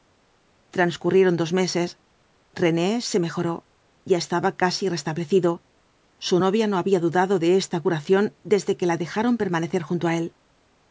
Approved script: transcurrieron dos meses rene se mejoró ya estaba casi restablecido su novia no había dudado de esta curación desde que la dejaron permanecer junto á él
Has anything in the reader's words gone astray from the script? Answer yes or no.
no